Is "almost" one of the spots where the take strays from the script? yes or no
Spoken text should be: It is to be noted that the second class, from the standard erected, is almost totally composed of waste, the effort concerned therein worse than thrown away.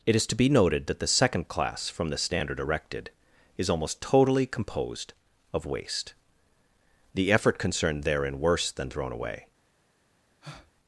no